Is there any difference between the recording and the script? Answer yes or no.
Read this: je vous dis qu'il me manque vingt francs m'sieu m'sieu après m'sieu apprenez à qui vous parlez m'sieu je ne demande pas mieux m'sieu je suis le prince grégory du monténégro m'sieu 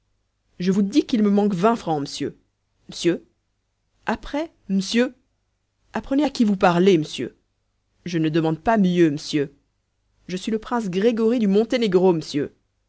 no